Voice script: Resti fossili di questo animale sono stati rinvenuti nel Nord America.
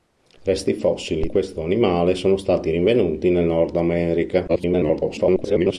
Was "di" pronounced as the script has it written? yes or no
no